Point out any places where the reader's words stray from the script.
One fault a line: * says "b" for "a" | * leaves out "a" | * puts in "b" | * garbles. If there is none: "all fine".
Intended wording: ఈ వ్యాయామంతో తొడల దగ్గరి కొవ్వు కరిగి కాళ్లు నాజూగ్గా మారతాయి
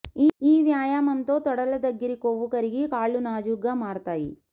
all fine